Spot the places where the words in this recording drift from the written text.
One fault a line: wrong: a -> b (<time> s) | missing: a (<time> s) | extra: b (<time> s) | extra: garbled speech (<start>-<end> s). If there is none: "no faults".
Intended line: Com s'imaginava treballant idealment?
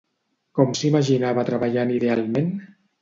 no faults